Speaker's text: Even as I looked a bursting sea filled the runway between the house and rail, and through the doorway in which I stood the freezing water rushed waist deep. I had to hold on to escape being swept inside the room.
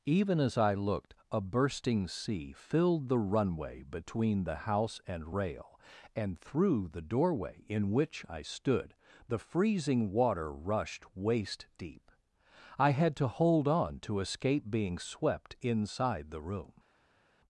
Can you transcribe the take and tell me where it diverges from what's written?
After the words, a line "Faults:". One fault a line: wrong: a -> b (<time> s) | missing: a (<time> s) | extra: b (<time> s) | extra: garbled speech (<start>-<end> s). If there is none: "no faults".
Even as I looked a bursting sea filled the runway between the house and rail, and through the doorway in which I stood the freezing water rushed waist deep. I had to hold on to escape being swept inside the room.
Faults:
no faults